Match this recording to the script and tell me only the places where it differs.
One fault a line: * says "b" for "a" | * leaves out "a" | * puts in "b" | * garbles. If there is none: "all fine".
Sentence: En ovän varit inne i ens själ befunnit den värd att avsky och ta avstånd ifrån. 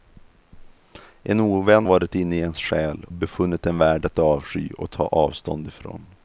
all fine